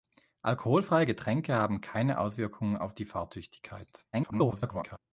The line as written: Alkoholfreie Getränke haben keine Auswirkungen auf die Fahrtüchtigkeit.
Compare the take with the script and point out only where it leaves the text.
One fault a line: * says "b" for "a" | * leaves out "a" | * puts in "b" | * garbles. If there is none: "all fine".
* garbles